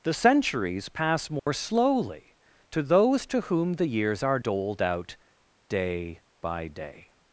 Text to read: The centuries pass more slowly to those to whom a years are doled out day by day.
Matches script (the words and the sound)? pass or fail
fail